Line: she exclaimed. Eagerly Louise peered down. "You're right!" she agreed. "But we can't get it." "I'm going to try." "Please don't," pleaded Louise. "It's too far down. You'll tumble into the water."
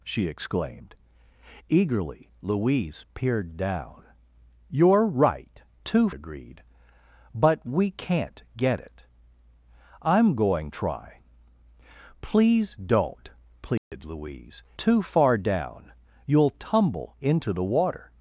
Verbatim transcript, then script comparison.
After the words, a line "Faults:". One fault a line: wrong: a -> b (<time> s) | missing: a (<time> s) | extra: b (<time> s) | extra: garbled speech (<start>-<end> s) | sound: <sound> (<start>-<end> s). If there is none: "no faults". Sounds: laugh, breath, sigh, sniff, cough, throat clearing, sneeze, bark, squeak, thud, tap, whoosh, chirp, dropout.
she exclaimed. Eagerly Louise peered down. "You're right!" too agreed. "But we can't get it." "I'm going try." "Please don't," pleaded Louise. "Too far down. You'll tumble into the water."
Faults:
wrong: she -> too (5.8 s)
missing: to (10.7 s)
sound: dropout (13.8-13.9 s)
missing: It's (14.6 s)